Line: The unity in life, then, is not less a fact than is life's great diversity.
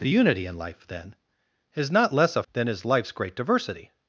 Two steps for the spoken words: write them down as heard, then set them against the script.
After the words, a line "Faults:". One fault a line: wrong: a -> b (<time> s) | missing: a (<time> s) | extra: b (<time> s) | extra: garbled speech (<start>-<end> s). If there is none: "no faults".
The unity in life, then, is not less a than is life's great diversity.
Faults:
missing: fact (2.4 s)